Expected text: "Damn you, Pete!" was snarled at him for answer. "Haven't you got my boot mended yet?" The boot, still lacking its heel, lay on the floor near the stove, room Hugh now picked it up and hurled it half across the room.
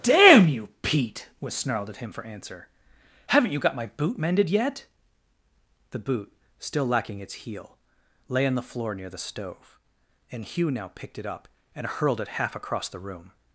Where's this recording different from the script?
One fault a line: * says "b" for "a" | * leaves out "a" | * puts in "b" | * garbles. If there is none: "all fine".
* says "and" for "room"